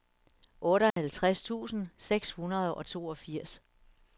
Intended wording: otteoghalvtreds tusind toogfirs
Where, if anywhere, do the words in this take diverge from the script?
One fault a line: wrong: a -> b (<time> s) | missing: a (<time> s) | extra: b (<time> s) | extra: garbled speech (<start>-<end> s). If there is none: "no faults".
extra: seks hundrede og (2.0 s)